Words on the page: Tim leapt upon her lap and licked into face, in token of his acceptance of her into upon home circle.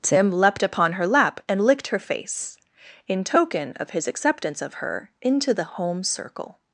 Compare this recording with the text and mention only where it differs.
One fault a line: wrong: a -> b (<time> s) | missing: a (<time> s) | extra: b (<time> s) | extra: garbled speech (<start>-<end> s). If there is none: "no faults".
wrong: into -> her (1.9 s)
wrong: upon -> the (5.5 s)